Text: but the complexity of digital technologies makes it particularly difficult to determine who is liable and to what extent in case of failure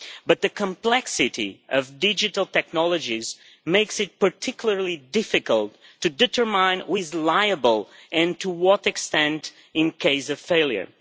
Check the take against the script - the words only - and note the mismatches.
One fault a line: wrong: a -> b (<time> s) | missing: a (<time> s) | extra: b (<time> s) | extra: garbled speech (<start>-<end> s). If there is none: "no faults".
no faults